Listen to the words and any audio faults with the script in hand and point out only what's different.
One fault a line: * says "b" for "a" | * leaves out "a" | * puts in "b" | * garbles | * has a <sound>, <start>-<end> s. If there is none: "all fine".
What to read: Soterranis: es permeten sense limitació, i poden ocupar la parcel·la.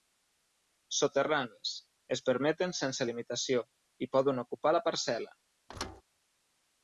* has a thud, 5.7-6.0 s